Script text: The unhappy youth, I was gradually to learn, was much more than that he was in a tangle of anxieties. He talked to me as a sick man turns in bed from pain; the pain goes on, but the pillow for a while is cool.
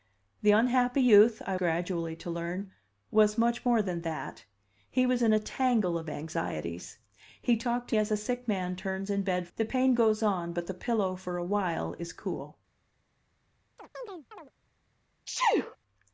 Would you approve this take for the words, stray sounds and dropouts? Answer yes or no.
no